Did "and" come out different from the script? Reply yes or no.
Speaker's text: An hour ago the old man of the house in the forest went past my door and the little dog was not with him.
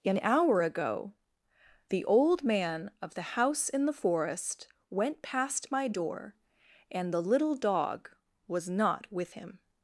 no